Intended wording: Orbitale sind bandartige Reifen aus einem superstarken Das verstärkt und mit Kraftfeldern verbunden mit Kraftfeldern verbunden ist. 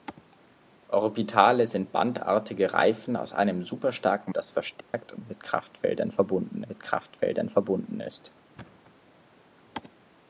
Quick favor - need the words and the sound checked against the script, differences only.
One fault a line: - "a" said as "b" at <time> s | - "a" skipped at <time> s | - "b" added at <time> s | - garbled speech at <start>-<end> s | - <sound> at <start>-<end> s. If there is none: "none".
- dropout at 4.8-4.9 s
- thud at 8.6-8.9 s